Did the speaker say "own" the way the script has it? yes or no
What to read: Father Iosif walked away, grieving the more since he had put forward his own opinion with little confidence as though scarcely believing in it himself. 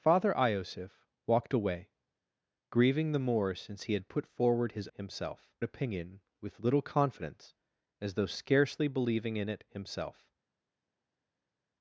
no